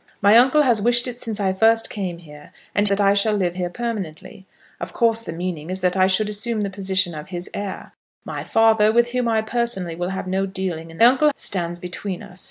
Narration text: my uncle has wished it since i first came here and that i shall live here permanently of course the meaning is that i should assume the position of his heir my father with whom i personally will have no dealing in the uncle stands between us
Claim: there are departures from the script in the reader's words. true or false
false